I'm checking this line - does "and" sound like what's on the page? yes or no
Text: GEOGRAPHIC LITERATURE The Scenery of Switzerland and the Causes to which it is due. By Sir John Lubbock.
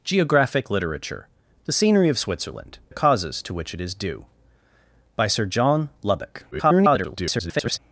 no